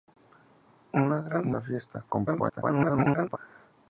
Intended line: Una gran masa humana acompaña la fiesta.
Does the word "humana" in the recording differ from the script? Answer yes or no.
yes